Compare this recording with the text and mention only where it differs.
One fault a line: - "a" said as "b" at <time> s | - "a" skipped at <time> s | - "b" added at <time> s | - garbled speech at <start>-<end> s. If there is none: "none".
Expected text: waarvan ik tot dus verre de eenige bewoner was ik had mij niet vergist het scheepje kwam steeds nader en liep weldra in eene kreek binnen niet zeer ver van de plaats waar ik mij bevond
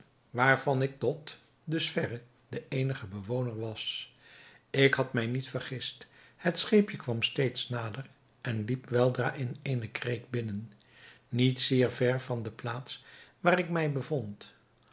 none